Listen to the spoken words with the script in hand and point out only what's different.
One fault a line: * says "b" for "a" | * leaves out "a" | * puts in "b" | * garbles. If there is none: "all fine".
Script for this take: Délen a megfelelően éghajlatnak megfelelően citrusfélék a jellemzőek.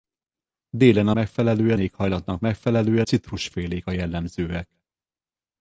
all fine